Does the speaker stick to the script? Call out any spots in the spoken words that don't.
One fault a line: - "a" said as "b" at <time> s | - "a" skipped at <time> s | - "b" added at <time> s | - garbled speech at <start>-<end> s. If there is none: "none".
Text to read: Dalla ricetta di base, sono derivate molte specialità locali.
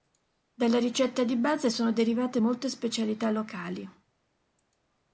none